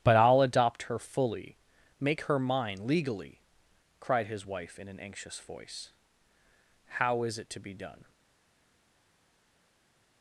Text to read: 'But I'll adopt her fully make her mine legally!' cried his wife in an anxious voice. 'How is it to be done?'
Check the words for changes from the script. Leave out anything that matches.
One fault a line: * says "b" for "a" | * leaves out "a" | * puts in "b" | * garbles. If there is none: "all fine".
all fine